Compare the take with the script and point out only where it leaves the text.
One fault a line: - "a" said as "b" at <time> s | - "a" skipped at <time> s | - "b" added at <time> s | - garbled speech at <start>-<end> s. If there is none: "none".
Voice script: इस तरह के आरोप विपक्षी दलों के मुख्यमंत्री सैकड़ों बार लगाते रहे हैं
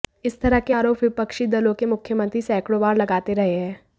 none